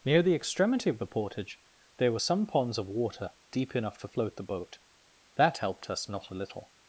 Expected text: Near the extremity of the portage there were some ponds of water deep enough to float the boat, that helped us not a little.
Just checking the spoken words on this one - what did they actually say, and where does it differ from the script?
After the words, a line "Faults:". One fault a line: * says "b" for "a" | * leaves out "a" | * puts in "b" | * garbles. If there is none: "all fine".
Near the extremity of the portage there were some ponds of water deep enough to float the boat, that helped us not a little.
Faults:
all fine